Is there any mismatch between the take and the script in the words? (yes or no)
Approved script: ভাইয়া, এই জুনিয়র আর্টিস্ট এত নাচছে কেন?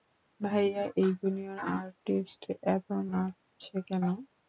no